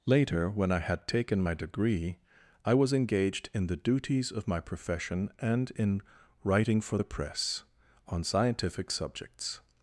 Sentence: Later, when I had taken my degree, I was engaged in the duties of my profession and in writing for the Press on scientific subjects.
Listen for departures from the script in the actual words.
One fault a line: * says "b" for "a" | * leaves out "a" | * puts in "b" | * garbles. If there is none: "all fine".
all fine